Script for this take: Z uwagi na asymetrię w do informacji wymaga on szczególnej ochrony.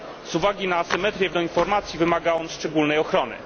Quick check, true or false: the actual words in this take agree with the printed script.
true